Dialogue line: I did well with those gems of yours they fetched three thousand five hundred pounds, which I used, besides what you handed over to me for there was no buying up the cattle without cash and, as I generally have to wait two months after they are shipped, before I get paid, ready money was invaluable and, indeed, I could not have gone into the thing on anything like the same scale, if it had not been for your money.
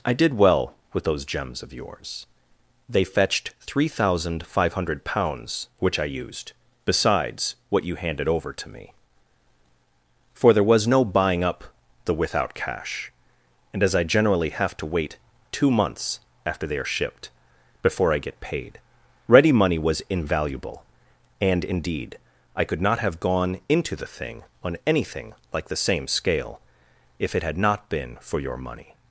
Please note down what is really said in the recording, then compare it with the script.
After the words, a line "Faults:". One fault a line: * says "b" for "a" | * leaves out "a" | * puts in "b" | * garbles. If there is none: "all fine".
I did well with those gems of yours they fetched three thousand five hundred pounds, which I used, besides what you handed over to me for there was no buying up the without cash and, as I generally have to wait two months after they are shipped, before I get paid, ready money was invaluable and, indeed, I could not have gone into the thing on anything like the same scale, if it had not been for your money.
Faults:
* leaves out "cattle"